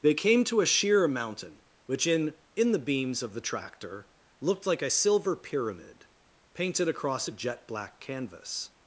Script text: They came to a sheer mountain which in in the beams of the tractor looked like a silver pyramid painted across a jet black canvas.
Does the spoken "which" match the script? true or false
true